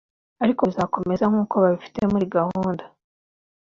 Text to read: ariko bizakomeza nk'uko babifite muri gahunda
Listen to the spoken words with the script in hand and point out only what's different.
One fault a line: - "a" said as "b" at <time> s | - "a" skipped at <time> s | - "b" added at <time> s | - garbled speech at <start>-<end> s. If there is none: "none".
none